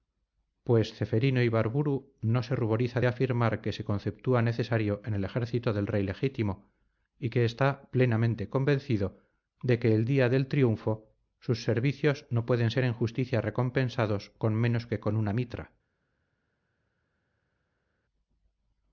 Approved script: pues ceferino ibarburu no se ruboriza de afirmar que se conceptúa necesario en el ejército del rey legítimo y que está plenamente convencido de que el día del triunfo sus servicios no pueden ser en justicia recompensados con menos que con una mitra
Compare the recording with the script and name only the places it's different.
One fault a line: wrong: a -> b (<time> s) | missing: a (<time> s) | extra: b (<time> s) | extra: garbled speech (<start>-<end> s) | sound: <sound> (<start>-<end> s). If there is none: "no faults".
no faults